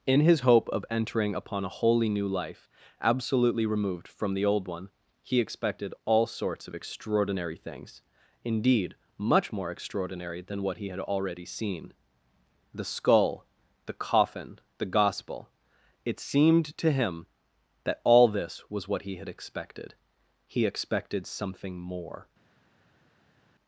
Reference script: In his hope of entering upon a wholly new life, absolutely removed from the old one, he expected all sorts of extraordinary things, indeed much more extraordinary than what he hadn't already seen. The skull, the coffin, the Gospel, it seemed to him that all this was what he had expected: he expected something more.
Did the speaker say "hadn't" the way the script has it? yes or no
no